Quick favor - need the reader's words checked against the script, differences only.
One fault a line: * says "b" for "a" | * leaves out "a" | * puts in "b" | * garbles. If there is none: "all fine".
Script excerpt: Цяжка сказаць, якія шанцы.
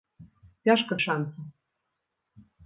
* leaves out "сказаць якія"